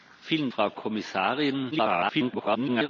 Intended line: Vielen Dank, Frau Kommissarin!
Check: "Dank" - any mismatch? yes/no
yes